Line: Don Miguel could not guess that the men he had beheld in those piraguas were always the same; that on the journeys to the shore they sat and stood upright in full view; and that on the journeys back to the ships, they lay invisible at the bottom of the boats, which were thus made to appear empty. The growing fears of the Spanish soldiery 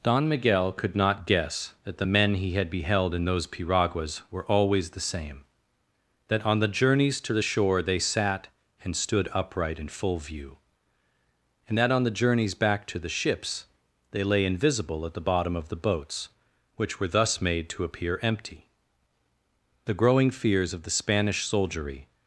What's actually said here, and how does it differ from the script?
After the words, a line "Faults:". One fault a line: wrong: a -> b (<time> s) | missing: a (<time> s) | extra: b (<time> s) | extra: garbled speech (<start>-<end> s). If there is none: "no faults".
Don Miguel could not guess that the men he had beheld in those piraguas were always the same; that on the journeys to the shore they sat and stood upright in full view; and that on the journeys back to the ships, they lay invisible at the bottom of the boats, which were thus made to appear empty. The growing fears of the Spanish soldiery
Faults:
no faults